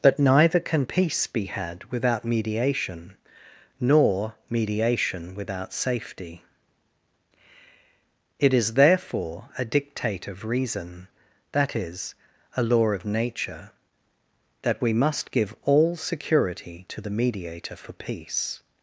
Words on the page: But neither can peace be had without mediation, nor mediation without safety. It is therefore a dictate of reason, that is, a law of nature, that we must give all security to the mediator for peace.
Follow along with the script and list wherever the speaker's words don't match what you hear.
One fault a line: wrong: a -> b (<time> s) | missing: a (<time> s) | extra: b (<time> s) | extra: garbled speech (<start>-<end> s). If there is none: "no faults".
no faults